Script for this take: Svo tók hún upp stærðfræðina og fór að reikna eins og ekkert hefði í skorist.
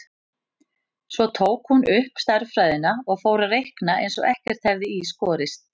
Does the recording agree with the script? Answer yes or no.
yes